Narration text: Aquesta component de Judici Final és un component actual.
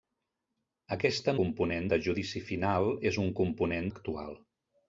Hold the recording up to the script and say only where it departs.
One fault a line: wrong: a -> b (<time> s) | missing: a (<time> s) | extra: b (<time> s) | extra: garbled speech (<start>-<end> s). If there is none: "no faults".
no faults